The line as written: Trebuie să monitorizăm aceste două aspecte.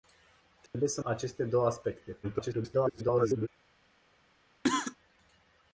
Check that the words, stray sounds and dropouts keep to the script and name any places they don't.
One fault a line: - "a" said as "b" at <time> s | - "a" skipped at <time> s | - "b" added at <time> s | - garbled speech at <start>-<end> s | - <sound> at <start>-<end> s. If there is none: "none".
- dropout at 0.7-0.7 s
- "monitorizăm" skipped at 1.0 s
- garbled speech at 2.2-3.5 s
- cough at 4.6-5.0 s